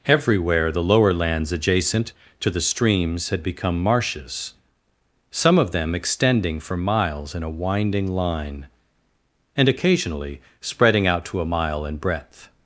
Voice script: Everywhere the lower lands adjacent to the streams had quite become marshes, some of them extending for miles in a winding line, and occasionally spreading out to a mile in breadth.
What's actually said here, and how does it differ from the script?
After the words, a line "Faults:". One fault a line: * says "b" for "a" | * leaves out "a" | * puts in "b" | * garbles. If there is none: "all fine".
Everywhere the lower lands adjacent to the streams had become marshes, some of them extending for miles in a winding line, and occasionally spreading out to a mile in breadth.
Faults:
* leaves out "quite"